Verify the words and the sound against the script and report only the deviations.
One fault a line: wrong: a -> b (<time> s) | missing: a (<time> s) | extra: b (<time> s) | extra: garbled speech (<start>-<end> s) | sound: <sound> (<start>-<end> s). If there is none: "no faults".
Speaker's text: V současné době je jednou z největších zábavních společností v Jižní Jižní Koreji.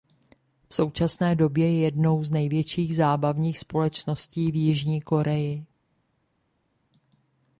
missing: Jižní (5.0 s)